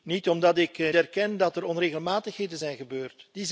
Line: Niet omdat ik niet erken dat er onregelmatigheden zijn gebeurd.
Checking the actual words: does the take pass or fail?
fail